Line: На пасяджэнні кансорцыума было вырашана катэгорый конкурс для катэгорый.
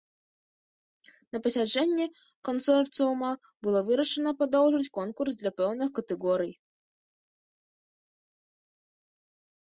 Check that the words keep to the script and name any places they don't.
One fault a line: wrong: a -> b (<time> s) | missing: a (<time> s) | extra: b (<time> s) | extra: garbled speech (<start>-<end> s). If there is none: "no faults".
wrong: катэгорый -> падоўжыць (4.4 s)
extra: пэўных (5.6 s)